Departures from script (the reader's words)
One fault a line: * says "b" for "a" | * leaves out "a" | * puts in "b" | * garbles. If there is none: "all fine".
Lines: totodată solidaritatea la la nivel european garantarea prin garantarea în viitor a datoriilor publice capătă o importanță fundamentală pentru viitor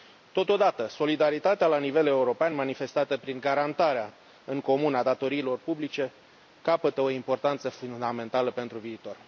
* leaves out "la"
* says "manifestată" for "garantarea"
* says "comun" for "viitor"